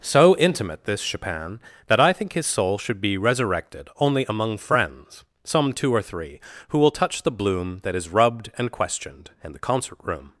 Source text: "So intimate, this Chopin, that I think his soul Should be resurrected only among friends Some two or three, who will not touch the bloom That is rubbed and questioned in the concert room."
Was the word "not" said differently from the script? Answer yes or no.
yes